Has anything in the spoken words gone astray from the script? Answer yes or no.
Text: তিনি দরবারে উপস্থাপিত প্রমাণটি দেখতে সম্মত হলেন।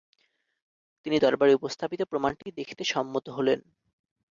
no